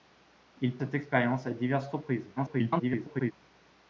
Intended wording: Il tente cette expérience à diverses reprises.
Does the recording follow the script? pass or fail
fail